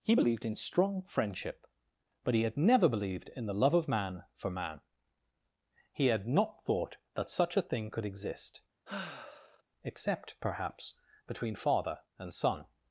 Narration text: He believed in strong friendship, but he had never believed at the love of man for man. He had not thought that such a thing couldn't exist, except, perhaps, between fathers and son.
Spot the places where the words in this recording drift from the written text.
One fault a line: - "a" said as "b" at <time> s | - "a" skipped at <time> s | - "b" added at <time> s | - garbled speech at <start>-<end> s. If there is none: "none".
- "at" said as "in" at 3.3 s
- "couldn't" said as "could" at 7.9 s
- "fathers" said as "father" at 11.6 s